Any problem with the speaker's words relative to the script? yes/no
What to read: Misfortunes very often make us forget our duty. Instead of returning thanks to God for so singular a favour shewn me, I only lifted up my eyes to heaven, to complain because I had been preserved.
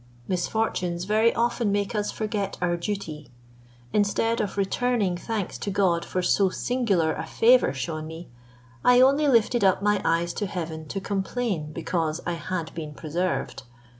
no